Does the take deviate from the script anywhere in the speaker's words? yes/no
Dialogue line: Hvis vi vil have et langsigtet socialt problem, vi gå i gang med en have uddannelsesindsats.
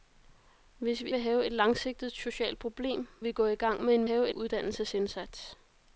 no